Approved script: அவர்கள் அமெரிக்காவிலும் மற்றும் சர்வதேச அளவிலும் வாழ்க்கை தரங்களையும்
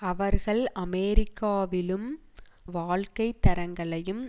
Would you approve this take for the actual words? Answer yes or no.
no